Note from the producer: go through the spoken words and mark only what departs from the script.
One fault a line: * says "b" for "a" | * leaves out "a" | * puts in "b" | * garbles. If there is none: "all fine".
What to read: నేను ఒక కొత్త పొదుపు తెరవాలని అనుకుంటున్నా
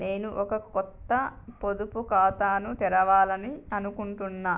* puts in "ఖాతాను"